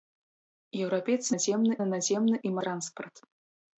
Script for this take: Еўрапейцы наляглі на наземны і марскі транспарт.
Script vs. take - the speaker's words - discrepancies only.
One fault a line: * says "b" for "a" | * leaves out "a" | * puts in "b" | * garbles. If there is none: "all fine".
* says "наземны" for "наляглі"
* leaves out "марскі"